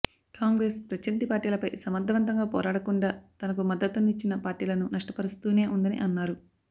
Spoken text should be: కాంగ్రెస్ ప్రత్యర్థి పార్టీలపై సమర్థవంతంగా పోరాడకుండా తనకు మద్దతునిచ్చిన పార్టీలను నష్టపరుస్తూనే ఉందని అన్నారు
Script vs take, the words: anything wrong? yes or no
no